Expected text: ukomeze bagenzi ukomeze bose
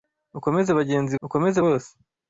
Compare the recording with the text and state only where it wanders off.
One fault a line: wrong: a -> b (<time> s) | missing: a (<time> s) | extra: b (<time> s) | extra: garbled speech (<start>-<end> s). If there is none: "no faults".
no faults